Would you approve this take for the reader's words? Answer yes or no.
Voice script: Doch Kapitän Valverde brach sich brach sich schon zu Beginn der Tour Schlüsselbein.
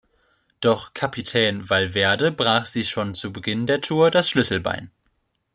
no